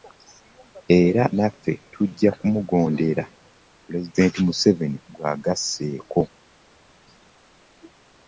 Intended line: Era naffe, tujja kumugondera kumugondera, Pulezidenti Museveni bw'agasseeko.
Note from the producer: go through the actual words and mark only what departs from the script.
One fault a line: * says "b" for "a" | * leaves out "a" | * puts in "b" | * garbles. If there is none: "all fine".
* leaves out "kumugondera"